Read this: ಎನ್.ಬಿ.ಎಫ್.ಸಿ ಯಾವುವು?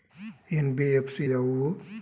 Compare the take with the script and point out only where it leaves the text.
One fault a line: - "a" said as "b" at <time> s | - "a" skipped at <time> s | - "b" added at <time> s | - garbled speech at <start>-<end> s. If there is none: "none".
none